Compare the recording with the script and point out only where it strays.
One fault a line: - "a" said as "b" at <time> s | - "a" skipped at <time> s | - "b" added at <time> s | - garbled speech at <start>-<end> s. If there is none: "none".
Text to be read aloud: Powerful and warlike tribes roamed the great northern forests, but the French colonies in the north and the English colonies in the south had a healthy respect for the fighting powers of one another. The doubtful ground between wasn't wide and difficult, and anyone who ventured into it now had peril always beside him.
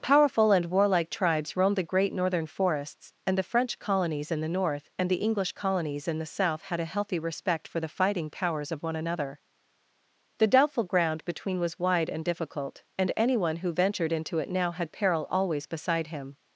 - "but" said as "and" at 3.3 s
- "wasn't" said as "was" at 11.6 s